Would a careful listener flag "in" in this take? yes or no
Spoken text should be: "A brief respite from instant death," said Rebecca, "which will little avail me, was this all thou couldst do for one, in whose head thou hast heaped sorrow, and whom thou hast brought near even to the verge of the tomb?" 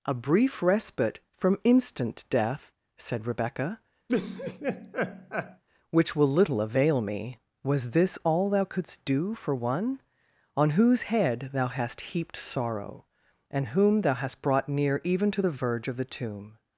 yes